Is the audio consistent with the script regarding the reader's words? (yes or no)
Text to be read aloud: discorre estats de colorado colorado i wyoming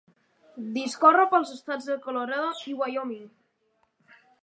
no